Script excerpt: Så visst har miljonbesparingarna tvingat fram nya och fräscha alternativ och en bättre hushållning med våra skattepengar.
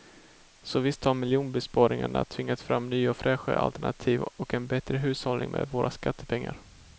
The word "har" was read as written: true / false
true